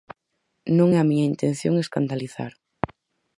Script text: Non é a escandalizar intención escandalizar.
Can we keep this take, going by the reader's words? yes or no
no